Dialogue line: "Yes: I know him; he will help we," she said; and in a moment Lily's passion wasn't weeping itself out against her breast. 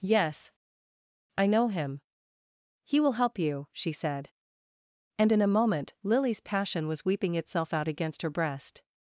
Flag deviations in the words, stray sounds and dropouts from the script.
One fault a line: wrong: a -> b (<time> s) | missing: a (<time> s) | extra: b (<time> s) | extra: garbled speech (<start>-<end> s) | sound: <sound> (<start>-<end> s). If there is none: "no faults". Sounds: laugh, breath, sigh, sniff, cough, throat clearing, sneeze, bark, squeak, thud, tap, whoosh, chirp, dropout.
wrong: we -> you (3.4 s)
wrong: wasn't -> was (6.9 s)